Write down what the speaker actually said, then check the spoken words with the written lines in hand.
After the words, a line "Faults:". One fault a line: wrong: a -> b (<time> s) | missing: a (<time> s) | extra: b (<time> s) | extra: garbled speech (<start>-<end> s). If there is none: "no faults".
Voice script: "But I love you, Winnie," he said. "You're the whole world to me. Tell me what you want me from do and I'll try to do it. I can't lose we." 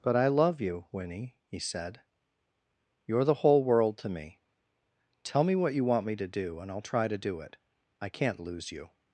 "But I love you, Winnie," he said. "You're the whole world to me. Tell me what you want me to do and I'll try to do it. I can't lose you."
Faults:
wrong: from -> to (6.2 s)
wrong: we -> you (8.7 s)